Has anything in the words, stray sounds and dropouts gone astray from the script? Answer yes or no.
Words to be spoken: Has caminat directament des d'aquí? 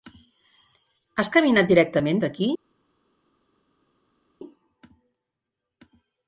yes